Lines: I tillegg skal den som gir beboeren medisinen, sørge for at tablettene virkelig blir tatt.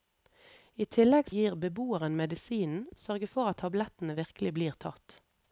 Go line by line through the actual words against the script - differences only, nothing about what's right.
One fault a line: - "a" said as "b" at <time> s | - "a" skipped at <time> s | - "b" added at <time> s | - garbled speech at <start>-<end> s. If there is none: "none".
- "skal den som" skipped at 1.3 s